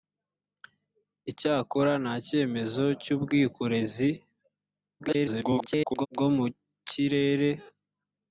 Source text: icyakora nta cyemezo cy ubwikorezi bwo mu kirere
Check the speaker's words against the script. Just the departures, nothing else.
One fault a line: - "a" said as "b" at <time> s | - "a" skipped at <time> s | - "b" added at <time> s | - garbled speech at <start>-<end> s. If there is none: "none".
- garbled speech at 5.0-6.1 s